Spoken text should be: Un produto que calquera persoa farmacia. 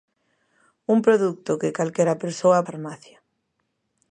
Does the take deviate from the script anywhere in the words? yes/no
no